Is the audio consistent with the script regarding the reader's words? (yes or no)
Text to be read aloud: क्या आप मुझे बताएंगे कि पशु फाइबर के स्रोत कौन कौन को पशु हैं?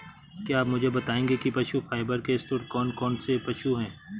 no